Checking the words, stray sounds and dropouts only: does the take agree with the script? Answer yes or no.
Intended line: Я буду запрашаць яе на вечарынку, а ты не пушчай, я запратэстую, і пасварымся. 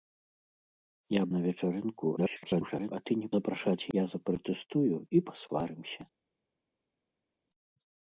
no